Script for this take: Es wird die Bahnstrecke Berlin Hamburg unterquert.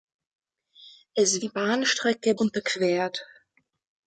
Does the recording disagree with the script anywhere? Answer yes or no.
yes